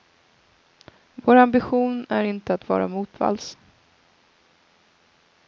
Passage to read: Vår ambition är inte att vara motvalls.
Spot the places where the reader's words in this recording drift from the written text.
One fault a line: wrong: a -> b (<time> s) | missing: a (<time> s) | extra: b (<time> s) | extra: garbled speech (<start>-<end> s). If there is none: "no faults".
no faults